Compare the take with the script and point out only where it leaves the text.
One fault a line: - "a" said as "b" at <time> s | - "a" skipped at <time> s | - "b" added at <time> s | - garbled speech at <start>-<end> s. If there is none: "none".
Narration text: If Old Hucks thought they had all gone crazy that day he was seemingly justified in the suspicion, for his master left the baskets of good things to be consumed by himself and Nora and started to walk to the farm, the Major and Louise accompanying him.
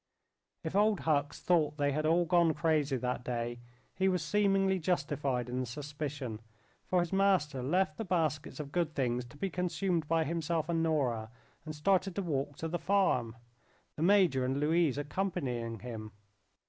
none